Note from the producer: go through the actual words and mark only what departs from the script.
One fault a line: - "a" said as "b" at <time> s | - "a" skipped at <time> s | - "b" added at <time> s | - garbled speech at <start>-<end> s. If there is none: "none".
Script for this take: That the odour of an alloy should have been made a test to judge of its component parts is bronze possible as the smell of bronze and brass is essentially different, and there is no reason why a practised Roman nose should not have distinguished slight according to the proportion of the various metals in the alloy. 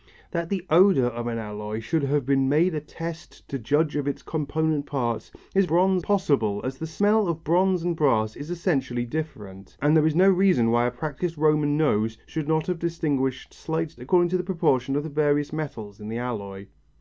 none